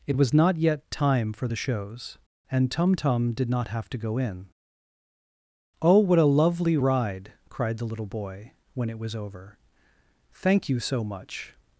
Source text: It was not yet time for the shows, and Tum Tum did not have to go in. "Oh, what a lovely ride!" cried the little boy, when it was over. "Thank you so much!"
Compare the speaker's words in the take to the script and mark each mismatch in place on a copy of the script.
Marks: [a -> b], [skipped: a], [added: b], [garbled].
It was not yet time for the shows, and Tum Tum did not have to go in. "Oh, what a lovely ride!" cried the little boy, when it was over. "Thank you so much!"